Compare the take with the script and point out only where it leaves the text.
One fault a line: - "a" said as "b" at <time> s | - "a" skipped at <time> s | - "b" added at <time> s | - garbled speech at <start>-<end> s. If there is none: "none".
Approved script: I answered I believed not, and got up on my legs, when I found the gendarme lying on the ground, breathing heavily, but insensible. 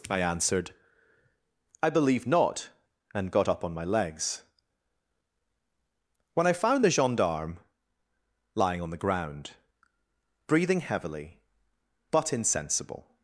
- "believed" said as "believe" at 1.9 s